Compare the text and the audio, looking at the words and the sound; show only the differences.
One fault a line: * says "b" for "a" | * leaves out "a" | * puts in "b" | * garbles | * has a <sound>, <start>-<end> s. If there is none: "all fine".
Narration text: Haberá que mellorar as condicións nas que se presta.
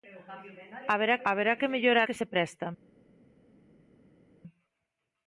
* puts in "haberá"
* leaves out "as condicións nas"